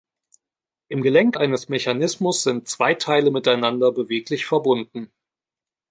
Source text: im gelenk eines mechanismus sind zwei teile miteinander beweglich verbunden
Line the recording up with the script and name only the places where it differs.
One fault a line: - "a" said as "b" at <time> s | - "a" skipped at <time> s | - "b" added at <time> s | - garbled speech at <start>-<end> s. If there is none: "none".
none